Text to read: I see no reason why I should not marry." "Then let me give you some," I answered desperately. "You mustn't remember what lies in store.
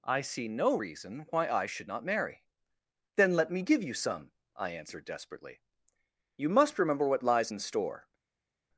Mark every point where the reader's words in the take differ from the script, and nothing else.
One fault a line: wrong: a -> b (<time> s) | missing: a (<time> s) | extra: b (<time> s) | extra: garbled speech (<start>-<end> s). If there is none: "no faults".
wrong: mustn't -> must (6.5 s)